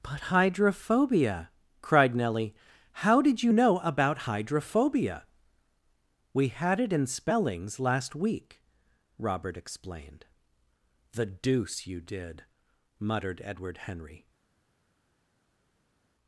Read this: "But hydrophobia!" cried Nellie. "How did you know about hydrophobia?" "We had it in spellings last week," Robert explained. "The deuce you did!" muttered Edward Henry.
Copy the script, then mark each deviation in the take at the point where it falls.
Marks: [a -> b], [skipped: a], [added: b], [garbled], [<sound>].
"But hydrophobia!" cried Nellie. "How did you know about hydrophobia?" "We had it in spellings last week," Robert explained. "The deuce you did!" muttered Edward Henry.